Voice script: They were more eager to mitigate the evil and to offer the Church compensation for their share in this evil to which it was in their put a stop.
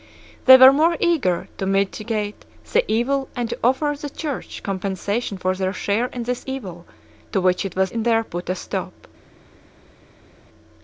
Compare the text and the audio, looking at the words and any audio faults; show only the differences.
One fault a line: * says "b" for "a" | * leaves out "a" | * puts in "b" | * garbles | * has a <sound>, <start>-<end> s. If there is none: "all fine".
all fine